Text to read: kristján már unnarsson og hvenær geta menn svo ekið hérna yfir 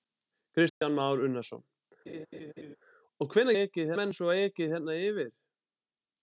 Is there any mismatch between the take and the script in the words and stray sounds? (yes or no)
yes